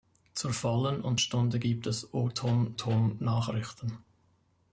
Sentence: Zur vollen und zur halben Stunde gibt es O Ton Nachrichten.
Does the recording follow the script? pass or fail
fail